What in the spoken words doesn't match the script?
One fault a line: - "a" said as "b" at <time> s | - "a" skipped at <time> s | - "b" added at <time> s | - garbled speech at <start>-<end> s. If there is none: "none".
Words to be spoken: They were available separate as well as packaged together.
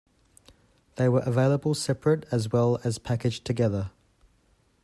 none